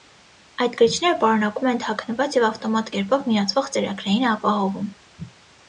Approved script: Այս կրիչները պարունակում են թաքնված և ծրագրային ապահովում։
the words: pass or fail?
fail